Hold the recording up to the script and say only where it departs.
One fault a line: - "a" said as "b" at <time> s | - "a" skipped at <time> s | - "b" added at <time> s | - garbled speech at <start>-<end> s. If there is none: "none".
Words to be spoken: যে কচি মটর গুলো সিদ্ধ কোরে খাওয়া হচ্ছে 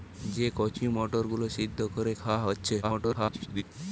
- garbled speech at 2.8-3.6 s